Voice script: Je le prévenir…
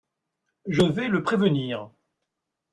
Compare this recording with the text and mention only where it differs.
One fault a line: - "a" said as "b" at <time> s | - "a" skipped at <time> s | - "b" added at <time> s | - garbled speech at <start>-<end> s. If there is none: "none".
- "vais" added at 0.8 s